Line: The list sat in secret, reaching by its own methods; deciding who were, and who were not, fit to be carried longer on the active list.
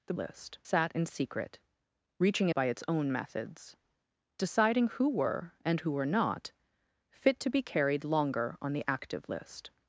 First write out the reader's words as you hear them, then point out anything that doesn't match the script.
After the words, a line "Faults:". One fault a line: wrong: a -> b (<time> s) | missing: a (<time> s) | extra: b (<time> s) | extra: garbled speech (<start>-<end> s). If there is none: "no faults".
The list sat in secret, reaching by its own methods; deciding who were, and who were not, fit to be carried longer on the active list.
Faults:
no faults